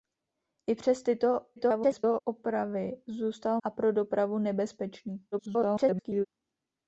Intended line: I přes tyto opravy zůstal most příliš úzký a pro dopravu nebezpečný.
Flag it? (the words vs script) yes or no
yes